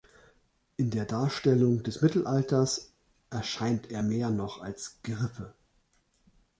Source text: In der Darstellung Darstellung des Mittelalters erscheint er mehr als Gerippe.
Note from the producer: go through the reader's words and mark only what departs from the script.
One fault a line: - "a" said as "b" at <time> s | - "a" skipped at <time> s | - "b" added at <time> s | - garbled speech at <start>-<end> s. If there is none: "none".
- "Darstellung" skipped at 1.8 s
- "noch" added at 4.3 s